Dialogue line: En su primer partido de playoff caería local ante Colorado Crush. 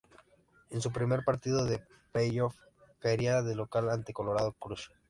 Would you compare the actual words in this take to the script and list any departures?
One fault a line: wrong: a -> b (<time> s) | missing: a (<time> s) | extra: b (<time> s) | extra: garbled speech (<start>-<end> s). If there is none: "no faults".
extra: de (3.4 s)